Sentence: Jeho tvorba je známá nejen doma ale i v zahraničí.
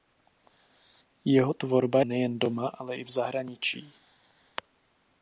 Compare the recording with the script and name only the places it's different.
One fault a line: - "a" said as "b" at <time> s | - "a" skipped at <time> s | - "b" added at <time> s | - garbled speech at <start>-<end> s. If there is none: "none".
- "je známá" skipped at 2.0 s